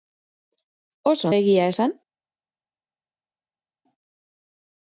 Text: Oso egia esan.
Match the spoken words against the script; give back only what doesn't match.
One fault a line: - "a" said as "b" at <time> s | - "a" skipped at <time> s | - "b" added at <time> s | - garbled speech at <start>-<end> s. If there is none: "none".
none